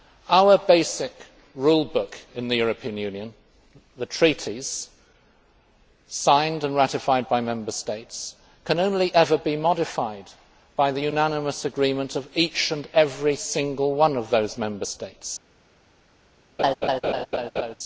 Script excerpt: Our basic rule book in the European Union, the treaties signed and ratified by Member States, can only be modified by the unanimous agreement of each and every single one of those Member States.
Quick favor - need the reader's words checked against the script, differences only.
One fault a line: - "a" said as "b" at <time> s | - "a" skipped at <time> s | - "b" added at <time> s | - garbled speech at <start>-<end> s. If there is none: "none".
- "ever" added at 9.1 s